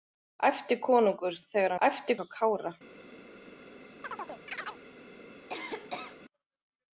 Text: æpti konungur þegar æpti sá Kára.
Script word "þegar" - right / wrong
right